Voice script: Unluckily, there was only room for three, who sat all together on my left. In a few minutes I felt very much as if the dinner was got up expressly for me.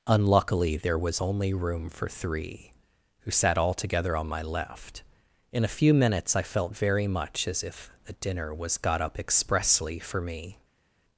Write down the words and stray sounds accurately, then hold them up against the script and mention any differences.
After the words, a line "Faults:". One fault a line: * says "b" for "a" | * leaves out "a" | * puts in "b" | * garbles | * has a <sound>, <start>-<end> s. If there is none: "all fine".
Unluckily, there was only room for three, who sat all together on my left. In a few minutes I felt very much as if a dinner was got up expressly for me.
Faults:
* says "a" for "the"